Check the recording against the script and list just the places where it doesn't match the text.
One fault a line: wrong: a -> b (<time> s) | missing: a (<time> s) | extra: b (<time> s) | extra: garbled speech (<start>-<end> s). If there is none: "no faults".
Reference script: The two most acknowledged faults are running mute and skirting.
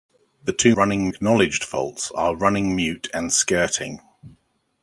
wrong: most -> running (0.7 s)